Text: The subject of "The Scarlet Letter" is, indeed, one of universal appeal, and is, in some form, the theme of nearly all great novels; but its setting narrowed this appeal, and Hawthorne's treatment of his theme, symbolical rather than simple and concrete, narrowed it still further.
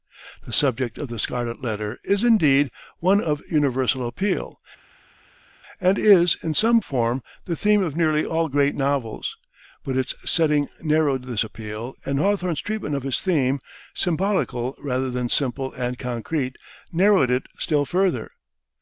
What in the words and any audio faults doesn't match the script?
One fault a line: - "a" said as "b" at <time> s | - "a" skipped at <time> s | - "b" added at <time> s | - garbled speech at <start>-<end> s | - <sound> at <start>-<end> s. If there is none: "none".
none